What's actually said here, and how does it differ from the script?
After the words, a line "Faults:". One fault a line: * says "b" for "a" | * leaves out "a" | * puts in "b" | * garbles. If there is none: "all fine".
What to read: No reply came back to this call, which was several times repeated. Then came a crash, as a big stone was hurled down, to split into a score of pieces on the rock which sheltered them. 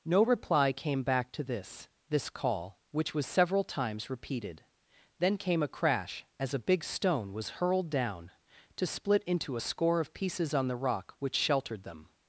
No reply came back to this this call, which was several times repeated. Then came a crash, as a big stone was hurled down, to split into a score of pieces on the rock which sheltered them.
Faults:
* puts in "this"